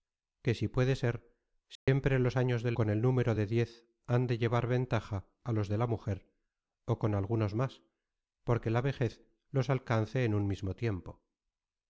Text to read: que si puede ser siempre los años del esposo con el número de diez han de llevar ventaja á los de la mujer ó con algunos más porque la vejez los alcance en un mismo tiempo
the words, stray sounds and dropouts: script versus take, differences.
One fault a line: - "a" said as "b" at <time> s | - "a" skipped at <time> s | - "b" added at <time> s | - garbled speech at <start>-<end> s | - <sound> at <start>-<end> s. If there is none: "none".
- dropout at 1.8-1.9 s
- "esposo" skipped at 2.8 s